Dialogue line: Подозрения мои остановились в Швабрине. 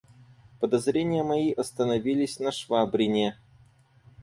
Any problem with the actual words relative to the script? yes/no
yes